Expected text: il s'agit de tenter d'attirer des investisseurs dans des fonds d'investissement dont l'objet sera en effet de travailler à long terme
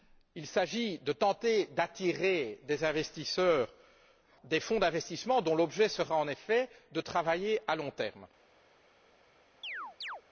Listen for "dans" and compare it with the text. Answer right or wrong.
wrong